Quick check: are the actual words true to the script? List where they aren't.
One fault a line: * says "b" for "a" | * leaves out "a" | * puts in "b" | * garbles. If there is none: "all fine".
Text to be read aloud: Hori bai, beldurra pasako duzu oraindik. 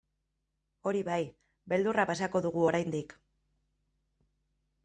* says "dugu" for "duzu"